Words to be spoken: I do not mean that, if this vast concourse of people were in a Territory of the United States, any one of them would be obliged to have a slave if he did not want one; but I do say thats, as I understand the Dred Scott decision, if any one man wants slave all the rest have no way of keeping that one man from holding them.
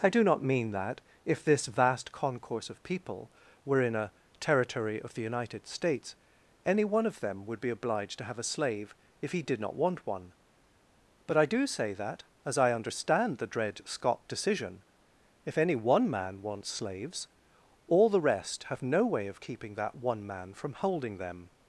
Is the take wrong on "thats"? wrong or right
wrong